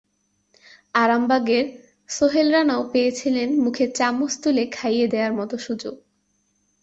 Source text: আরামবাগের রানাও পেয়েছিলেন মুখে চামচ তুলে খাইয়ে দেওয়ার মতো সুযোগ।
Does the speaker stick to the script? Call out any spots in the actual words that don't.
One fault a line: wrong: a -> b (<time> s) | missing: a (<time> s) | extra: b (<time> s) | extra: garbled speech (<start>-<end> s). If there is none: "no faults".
extra: সোহেল (2.1 s)